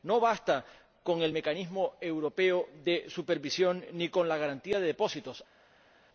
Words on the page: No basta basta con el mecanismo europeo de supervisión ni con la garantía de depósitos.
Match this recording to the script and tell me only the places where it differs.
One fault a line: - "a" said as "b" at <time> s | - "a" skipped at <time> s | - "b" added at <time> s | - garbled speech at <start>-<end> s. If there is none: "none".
- "basta" skipped at 0.7 s